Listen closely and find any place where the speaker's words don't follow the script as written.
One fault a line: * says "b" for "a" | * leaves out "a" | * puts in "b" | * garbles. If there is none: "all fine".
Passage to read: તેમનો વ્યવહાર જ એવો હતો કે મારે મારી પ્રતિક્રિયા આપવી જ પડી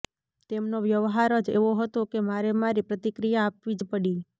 all fine